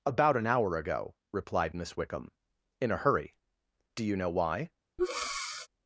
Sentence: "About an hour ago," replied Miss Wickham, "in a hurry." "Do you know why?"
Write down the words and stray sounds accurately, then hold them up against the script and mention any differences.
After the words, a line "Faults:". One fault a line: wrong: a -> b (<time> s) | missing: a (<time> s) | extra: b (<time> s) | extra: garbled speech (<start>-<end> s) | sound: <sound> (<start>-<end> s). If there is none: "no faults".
"About an hour ago," replied Miss Wickham, "in a hurry." "Do you know why?"
Faults:
sound: breath (5.0-5.7 s)